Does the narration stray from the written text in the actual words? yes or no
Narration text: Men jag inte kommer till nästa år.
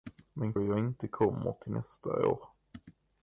no